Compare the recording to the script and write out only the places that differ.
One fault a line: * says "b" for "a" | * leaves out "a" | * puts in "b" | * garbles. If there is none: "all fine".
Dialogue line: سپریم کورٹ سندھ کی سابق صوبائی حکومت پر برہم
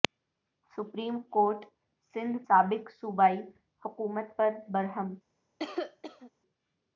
* leaves out "کی"